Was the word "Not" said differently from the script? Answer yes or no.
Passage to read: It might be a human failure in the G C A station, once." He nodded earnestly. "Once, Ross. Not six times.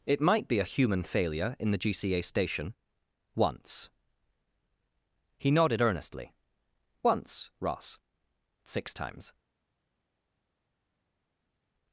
yes